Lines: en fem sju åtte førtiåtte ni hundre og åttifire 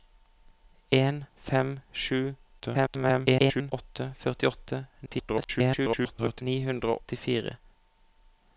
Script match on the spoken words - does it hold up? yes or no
no